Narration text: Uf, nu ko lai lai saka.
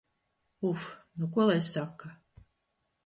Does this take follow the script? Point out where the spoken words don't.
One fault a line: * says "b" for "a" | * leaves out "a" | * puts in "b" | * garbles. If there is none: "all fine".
* leaves out "lai"